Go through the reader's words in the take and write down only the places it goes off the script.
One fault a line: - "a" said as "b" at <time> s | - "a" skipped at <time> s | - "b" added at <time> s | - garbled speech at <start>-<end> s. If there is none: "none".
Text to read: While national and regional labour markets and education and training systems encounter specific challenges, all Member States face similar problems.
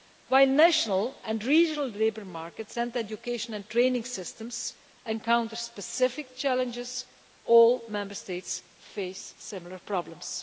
none